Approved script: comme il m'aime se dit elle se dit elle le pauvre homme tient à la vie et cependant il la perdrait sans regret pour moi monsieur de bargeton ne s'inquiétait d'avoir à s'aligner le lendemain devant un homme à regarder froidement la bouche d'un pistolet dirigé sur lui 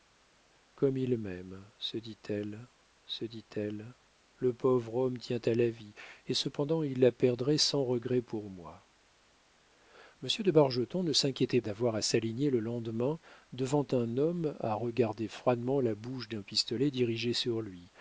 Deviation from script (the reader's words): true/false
false